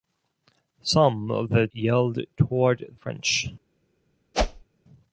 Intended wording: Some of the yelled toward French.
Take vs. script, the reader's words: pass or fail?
pass